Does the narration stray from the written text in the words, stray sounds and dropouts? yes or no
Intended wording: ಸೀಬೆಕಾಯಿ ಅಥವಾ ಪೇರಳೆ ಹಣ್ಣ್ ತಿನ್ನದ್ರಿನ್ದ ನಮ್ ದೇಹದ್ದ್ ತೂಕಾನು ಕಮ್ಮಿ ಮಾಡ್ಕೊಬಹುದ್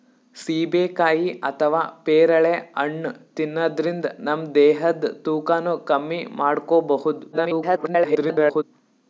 yes